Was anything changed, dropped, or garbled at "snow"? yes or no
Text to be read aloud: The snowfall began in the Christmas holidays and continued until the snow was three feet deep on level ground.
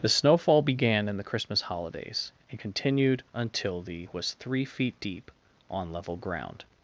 yes